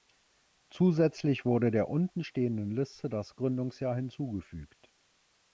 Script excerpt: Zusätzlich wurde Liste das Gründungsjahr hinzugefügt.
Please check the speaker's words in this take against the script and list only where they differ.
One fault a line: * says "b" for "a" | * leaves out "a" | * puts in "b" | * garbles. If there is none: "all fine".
* puts in "der unten stehenden"